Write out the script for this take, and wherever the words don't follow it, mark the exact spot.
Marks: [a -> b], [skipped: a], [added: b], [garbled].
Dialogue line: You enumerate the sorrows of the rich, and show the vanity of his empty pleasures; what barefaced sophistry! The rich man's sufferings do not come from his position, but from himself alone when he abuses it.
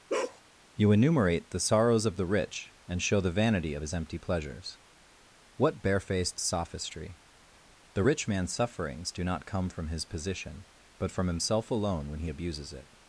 You enumerate the sorrows of the rich, and show the vanity of his empty pleasures; what barefaced sophistry! The rich man's sufferings do not come from his position, but from himself alone when he abuses it.